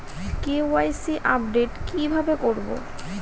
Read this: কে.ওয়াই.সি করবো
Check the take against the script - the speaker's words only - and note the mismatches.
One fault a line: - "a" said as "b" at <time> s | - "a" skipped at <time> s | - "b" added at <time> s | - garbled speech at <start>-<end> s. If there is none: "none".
- "আপডেট কি ভাবে" added at 1.3 s